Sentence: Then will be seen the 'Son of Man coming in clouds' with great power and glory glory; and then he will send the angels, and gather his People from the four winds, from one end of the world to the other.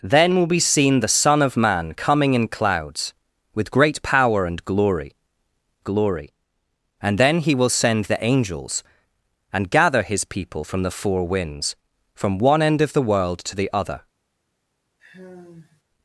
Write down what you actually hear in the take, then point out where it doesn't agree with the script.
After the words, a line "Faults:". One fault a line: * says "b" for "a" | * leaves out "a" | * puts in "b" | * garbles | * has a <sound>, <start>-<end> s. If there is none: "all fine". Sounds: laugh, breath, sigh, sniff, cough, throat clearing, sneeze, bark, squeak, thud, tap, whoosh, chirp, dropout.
Then will be seen the 'Son of Man coming in clouds' with great power and glory glory; and then he will send the angels, and gather his People from the four winds, from one end of the world to the other.
Faults:
* has a sigh, 15.0-15.8 s